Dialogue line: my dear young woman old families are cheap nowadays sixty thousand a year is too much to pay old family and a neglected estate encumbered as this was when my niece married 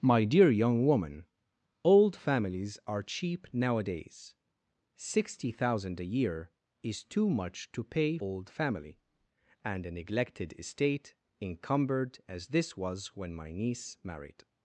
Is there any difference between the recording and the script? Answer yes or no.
no